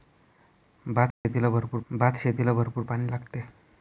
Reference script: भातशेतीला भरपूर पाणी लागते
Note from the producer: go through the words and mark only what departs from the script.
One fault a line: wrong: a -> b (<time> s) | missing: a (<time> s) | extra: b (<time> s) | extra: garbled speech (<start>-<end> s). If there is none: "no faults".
extra: भातशेतीला भरपूर (1.9 s)